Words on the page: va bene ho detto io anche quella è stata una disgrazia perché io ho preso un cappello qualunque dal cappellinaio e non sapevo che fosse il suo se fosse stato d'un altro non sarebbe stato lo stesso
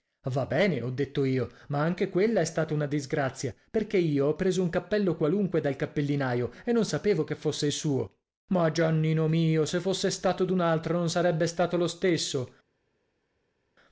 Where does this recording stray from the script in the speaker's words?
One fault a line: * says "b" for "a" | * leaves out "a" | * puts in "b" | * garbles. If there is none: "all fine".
* puts in "ma"
* puts in "ma giannino mio"